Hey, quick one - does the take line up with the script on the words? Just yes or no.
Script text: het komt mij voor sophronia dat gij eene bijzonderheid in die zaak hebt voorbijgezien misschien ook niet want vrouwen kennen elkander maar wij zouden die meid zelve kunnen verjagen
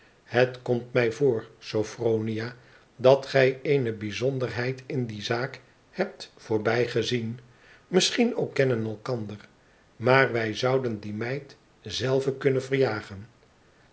no